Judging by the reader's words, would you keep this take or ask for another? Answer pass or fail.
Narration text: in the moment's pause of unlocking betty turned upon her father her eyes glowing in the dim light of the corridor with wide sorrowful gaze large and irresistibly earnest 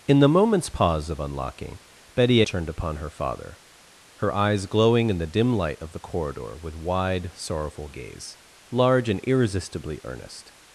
pass